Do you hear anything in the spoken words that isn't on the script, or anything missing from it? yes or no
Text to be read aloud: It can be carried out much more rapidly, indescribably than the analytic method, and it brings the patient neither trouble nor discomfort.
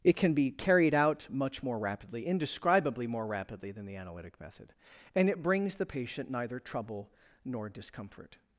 yes